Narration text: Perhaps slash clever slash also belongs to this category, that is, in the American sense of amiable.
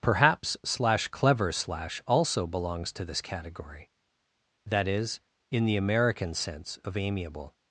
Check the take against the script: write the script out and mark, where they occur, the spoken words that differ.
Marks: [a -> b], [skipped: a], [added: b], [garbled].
Perhaps slash clever slash also belongs to this category, that is, in the American sense of amiable.